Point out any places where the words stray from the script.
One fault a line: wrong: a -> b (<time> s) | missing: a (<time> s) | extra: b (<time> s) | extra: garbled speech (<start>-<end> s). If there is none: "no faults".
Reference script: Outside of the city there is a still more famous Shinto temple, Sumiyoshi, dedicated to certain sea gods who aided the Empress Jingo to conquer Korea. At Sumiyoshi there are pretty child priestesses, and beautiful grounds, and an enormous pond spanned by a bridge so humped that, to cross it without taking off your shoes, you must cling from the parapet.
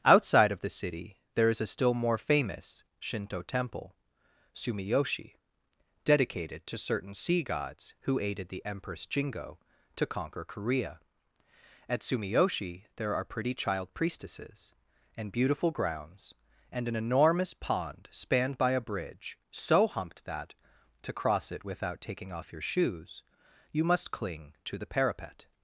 wrong: from -> to (24.6 s)